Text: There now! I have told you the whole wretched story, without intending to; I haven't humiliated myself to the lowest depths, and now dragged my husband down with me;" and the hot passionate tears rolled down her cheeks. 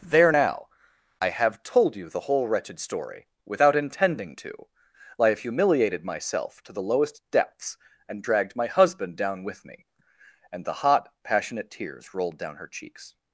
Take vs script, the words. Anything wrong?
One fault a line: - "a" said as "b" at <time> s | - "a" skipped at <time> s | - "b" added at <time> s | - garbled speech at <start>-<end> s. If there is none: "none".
- "haven't" said as "have" at 5.3 s
- "now" skipped at 8.2 s